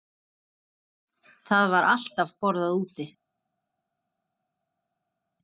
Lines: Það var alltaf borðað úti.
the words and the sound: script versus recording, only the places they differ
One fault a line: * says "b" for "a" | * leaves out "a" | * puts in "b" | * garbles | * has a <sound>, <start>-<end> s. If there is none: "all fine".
all fine